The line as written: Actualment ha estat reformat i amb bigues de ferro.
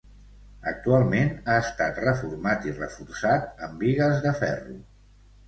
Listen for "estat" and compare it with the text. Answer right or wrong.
right